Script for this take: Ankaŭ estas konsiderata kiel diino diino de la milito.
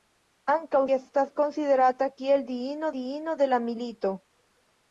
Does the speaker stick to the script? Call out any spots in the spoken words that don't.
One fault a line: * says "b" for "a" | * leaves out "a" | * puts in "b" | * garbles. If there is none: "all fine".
all fine